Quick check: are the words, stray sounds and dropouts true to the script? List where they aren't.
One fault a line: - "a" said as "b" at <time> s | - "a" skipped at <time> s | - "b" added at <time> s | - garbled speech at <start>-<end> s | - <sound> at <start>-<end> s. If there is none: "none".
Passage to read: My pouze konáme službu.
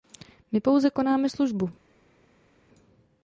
none